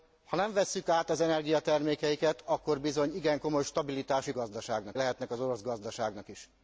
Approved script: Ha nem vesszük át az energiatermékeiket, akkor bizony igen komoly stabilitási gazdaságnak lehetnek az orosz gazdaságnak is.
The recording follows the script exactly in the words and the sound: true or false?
true